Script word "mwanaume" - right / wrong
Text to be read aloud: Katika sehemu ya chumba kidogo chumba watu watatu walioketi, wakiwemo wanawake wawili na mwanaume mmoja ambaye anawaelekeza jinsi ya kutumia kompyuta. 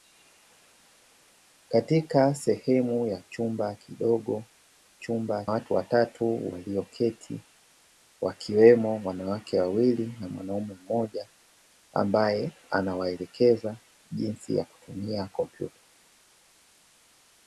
right